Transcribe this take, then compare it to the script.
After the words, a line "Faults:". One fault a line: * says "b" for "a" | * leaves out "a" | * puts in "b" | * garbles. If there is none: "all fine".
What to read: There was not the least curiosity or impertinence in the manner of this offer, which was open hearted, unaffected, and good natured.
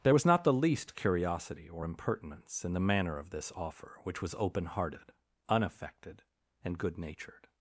There was not the least curiosity or impertinence in the manner of this offer, which was open hearted, unaffected, and good natured.
Faults:
all fine